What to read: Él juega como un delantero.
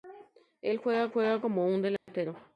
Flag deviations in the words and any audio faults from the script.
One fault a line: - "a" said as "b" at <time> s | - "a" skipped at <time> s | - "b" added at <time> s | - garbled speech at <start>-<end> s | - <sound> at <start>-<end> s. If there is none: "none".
- "juega" added at 1.1 s
- dropout at 2.0-2.1 s